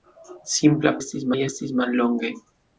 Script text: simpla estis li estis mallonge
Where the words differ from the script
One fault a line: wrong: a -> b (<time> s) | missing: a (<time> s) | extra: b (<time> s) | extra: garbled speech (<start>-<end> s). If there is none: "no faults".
no faults